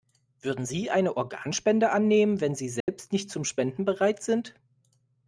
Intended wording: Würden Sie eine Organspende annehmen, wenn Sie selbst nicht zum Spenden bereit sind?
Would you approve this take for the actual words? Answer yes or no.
yes